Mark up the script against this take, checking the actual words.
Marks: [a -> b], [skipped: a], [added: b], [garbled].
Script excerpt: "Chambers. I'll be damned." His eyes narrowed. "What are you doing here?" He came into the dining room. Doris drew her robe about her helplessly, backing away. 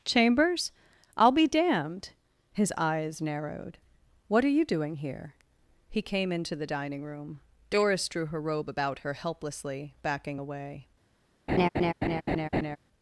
"Chambers. I'll be damned." His eyes narrowed. "What are you doing here?" He came into the dining room. Doris drew her robe about her helplessly, backing away.